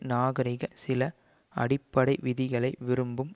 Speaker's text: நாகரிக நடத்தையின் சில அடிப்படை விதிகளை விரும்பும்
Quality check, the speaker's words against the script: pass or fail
fail